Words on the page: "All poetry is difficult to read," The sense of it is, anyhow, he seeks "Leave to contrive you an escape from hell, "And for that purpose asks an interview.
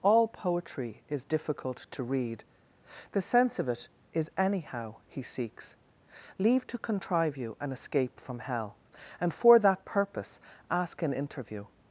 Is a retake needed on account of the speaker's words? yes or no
yes